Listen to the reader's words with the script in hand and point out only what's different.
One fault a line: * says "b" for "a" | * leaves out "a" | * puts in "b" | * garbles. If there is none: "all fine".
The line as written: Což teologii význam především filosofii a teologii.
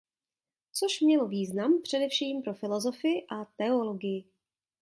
* says "mělo" for "teologii"
* puts in "pro"